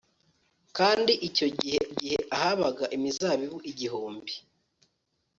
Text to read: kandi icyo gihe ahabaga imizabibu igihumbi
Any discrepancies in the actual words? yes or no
yes